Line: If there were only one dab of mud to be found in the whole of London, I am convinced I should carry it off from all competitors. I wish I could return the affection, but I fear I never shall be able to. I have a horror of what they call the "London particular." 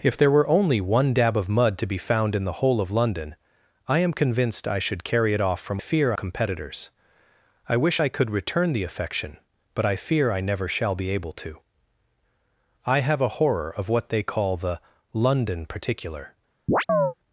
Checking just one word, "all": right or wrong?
wrong